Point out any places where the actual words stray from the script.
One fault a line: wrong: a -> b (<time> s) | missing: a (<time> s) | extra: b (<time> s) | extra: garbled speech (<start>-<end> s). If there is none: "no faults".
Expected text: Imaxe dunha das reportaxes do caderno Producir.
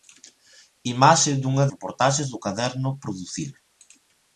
missing: das (1.6 s)